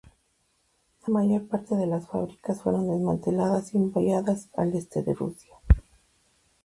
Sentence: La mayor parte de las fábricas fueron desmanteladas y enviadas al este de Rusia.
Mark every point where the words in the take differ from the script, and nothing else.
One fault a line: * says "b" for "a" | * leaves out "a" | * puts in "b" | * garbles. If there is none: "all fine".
all fine